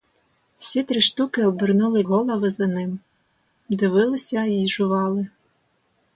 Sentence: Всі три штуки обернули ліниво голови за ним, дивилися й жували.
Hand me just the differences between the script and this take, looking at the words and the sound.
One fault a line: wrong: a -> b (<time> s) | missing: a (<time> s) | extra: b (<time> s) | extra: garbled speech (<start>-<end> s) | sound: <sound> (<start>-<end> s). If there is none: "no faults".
missing: ліниво (2.0 s)